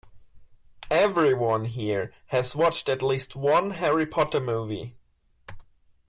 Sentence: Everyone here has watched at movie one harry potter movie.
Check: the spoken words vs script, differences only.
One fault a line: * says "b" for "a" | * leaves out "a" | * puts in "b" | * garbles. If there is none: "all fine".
* says "least" for "movie"